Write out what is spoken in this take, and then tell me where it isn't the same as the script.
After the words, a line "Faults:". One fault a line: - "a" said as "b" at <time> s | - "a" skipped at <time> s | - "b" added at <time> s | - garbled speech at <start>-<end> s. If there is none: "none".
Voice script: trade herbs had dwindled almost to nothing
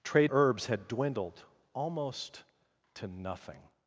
trade herbs had dwindled almost to nothing
Faults:
none